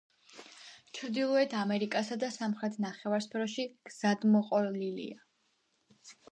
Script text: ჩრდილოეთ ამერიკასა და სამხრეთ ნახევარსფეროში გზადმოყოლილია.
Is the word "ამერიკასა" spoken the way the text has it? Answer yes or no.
yes